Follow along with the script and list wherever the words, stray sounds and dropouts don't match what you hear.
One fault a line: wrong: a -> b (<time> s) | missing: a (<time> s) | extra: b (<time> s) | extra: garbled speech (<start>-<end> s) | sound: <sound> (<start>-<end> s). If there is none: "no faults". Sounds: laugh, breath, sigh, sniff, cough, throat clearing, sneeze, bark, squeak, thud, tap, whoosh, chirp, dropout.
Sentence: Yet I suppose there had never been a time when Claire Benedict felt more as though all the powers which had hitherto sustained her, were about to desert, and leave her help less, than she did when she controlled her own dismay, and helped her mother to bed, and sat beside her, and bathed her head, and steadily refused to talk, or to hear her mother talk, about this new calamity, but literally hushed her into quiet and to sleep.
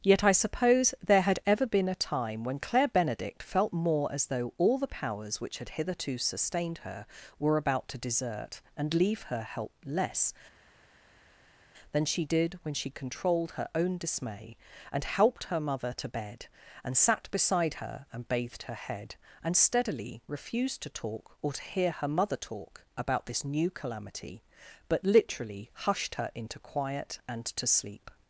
wrong: never -> ever (1.4 s)